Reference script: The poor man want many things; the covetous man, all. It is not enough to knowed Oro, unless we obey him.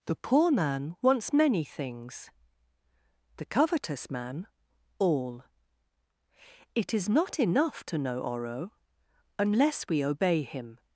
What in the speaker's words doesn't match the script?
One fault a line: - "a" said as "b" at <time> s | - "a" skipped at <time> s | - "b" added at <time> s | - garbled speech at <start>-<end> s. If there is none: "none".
- "want" said as "wants" at 1.0 s
- "knowed" said as "know" at 8.0 s